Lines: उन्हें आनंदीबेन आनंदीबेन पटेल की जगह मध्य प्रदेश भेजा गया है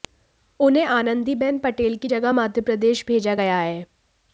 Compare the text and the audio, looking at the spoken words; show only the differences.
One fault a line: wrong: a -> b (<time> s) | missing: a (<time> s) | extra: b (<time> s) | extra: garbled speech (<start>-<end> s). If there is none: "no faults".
missing: आनंदीबेन (1.6 s)